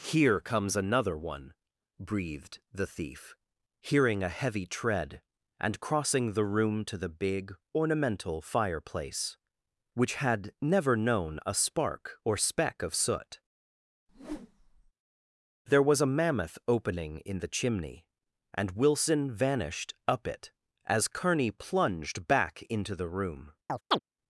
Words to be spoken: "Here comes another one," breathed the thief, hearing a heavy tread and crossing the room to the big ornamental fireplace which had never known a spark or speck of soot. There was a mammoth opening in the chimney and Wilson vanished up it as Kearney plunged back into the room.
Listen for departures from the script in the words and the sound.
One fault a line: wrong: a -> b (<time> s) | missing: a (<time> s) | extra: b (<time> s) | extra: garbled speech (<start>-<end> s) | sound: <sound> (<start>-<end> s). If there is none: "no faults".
sound: whoosh (14.1-14.9 s)
sound: chirp (23.7-24.0 s)